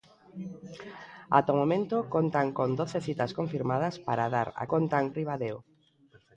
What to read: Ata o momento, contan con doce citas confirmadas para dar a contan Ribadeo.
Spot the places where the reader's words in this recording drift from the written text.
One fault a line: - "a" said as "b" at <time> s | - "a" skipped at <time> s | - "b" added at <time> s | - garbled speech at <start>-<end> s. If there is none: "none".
none